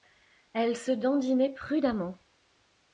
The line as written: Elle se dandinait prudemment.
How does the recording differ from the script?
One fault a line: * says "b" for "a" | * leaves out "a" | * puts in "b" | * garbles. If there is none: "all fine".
all fine